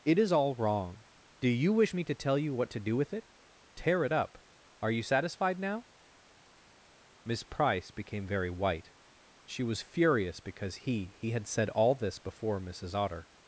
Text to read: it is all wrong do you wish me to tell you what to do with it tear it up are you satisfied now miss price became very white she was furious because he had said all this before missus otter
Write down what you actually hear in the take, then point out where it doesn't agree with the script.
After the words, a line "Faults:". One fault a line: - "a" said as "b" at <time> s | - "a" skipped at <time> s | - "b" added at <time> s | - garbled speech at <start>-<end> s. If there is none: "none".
it is all wrong do you wish me to tell you what to do with it tear it up are you satisfied now miss price became very white she was furious because he he had said all this before missus otter
Faults:
- "he" added at 11.2 s